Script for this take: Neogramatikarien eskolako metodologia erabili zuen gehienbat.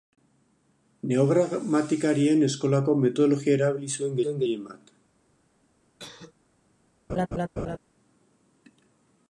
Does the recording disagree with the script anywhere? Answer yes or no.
yes